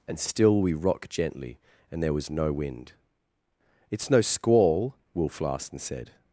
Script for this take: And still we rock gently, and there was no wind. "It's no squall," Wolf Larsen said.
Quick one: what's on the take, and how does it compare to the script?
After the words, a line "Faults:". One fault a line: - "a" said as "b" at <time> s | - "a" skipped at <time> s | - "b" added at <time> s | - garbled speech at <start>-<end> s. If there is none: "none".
And still we rock gently, and there was no wind. "It's no squall," Wolf Larsen said.
Faults:
none